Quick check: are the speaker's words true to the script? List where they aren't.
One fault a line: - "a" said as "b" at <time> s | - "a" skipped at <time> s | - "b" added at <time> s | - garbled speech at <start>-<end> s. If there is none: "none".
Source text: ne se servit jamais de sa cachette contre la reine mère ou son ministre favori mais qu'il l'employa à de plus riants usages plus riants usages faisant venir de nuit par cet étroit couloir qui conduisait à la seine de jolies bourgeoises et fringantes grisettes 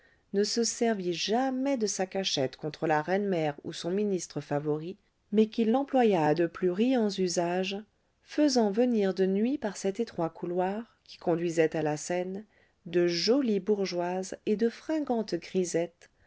- "plus riants usages" skipped at 7.8 s
- "de" added at 14.6 s